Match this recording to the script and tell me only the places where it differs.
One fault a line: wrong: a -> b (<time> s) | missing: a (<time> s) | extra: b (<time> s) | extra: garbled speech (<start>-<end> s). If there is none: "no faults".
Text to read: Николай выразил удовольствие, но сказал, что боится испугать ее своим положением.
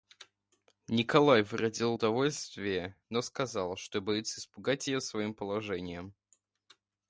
no faults